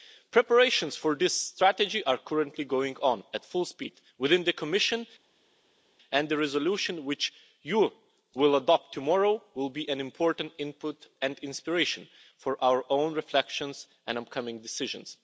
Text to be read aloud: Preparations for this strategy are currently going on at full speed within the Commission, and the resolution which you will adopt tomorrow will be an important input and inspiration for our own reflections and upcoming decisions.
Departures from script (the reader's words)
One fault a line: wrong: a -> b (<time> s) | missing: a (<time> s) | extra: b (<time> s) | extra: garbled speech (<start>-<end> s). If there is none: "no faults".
no faults